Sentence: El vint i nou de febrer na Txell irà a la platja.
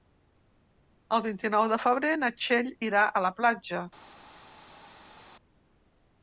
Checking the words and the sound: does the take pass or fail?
pass